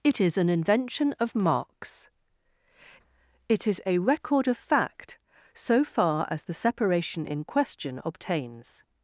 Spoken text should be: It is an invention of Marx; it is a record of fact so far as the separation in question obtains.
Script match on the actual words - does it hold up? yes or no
yes